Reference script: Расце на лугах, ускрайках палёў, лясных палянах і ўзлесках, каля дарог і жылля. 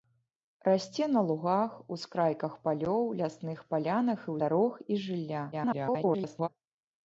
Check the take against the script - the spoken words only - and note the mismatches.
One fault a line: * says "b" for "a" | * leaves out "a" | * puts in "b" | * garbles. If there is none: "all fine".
* leaves out "ўзлесках каля"
* garbles